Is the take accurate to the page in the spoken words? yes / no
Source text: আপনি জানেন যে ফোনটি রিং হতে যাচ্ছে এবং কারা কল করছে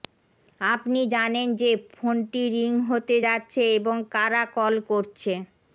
yes